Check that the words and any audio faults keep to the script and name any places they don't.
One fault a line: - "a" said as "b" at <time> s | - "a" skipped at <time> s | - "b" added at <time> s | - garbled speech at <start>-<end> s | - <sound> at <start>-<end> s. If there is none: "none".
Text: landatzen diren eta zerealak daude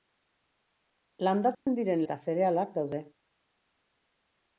- dropout at 1.5-1.7 s